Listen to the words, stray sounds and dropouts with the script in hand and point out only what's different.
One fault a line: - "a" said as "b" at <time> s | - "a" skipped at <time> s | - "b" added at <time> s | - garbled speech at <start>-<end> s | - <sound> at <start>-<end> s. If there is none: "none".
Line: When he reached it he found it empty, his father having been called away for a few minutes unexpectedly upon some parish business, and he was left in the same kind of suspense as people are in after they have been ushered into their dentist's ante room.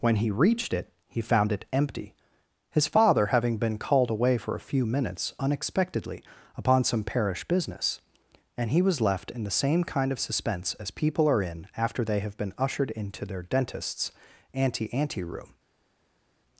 - "ante" added at 14.9 s